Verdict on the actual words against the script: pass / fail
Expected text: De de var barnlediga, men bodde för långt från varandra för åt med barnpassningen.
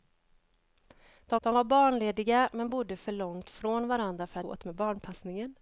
pass